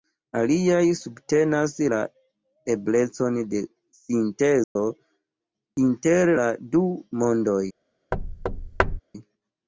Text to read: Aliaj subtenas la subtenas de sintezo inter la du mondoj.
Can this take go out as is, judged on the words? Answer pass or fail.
fail